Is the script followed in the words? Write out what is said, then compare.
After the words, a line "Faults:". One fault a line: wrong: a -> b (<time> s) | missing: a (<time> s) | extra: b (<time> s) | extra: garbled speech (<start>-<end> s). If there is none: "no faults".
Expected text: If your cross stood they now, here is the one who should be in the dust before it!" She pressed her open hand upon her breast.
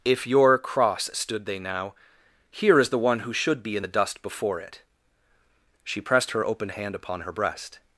If your cross stood they now, here is the one who should be in the dust before it!" She pressed her open hand upon her breast.
Faults:
no faults